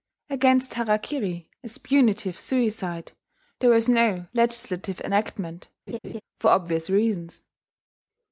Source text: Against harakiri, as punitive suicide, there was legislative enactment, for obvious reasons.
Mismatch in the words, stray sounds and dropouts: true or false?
true